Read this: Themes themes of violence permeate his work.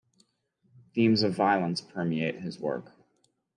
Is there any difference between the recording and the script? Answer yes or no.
yes